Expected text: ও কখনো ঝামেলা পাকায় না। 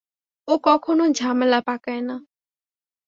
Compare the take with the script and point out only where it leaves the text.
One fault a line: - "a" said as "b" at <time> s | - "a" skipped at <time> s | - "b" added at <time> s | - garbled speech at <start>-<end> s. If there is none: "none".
none